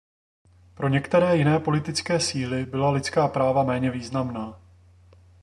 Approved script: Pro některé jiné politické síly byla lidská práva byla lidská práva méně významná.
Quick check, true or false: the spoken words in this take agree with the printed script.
false